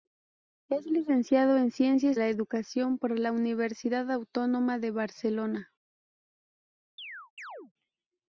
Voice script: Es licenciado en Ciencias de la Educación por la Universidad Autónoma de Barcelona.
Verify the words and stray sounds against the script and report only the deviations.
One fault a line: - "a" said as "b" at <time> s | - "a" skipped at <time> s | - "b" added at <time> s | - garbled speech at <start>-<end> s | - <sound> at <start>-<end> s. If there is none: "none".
- "de" skipped at 2.2 s
- chirp at 7.0-7.7 s